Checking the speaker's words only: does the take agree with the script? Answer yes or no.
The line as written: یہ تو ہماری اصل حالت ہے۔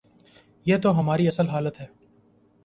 yes